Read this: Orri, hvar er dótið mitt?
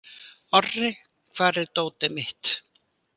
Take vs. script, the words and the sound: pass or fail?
pass